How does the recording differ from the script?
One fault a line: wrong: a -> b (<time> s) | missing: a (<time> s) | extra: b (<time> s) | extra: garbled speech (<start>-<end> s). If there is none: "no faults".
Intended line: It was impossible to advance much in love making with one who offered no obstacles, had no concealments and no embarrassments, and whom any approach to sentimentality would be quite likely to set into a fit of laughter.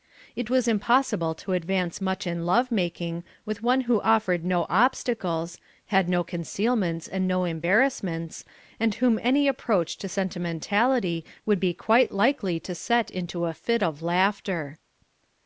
no faults